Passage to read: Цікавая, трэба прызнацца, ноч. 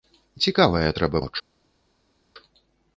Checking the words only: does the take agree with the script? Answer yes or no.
no